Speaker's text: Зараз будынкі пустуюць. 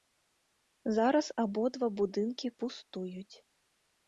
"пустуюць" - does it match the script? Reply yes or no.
yes